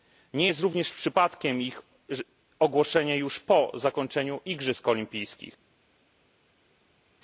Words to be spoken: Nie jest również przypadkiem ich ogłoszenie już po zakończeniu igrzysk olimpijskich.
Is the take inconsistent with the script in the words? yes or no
no